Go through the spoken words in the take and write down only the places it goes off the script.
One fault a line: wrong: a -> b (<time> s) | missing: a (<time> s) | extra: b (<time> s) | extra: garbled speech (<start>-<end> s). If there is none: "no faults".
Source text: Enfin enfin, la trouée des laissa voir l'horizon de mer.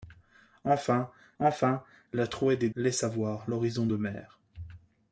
no faults